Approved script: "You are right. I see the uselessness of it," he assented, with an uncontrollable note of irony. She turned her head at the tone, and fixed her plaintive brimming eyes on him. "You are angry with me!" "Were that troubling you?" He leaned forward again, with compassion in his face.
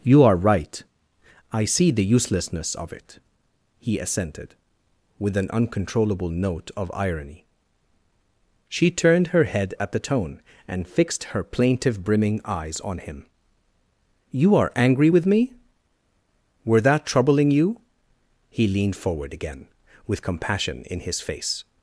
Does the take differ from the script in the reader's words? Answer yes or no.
no